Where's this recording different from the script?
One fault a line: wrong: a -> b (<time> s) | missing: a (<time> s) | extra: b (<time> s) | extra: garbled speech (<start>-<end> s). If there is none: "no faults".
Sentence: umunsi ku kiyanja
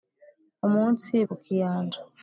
no faults